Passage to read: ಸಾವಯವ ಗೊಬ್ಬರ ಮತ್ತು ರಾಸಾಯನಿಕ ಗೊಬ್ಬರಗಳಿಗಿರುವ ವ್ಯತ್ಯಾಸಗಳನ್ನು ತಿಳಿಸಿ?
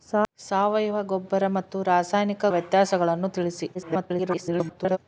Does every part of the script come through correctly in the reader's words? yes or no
no